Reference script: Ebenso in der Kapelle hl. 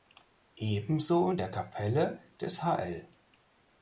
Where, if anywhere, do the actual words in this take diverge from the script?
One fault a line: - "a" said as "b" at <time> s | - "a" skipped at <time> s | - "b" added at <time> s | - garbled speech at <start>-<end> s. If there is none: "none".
- "des" added at 2.4 s